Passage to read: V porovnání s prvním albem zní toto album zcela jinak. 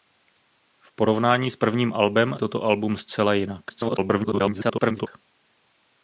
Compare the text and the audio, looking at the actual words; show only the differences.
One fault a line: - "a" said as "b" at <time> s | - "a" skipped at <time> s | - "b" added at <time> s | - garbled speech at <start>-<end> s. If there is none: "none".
- "zní" skipped at 2.4 s
- garbled speech at 3.7-5.1 s